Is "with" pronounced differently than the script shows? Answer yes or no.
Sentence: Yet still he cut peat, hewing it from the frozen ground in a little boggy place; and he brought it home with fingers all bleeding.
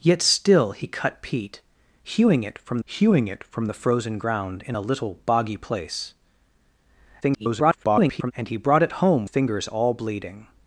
yes